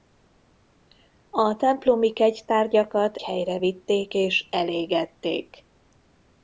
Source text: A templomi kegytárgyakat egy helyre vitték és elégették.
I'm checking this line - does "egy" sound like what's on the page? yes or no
no